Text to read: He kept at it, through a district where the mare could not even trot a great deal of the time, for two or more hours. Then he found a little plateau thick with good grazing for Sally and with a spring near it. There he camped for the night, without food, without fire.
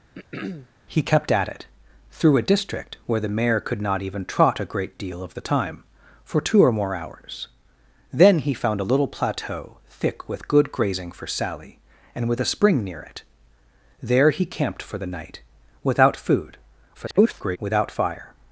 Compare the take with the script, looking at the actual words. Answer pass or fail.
fail